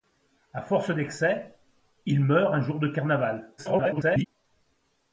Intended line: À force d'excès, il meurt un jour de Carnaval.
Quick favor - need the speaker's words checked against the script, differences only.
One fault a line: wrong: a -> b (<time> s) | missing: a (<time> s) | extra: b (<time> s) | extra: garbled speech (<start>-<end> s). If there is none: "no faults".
extra: garbled speech (3.6-4.3 s)